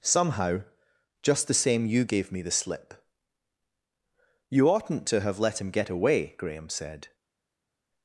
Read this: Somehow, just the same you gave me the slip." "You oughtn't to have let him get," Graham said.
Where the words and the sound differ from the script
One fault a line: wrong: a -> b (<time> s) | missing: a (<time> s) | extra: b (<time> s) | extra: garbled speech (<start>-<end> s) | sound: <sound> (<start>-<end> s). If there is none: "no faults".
extra: away (5.9 s)